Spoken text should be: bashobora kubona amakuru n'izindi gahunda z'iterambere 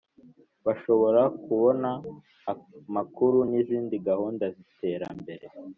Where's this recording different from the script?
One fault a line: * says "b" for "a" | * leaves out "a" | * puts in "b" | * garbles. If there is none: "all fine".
all fine